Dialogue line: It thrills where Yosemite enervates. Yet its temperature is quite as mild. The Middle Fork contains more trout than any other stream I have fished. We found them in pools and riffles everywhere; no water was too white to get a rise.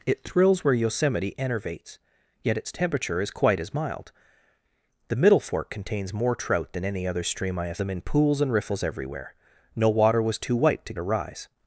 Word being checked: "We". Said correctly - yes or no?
no